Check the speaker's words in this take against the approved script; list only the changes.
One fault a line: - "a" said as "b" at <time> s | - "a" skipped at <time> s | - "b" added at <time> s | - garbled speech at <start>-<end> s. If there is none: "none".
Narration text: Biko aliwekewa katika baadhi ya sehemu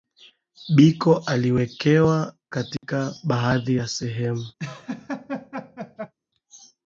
none